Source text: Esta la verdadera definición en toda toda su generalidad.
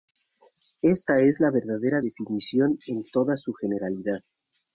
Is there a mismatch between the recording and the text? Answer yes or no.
yes